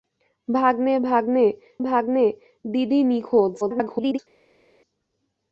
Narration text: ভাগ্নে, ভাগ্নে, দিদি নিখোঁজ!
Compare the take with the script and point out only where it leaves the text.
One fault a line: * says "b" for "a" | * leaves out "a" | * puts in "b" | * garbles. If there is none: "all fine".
* puts in "ভাগ্নে"
* garbles